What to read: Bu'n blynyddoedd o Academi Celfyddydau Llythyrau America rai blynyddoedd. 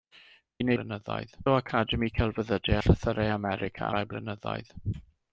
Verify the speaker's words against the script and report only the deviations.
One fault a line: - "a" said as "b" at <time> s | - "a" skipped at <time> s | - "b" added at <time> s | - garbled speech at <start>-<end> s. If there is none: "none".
none